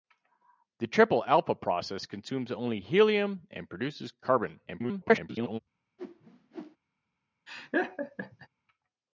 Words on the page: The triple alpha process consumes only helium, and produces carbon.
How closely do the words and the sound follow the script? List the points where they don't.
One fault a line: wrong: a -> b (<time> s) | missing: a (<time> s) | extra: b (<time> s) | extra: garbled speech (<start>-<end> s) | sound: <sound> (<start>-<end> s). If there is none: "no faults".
extra: garbled speech (4.7-5.6 s)
sound: whoosh (6.0-6.8 s)
sound: laugh (7.5-8.5 s)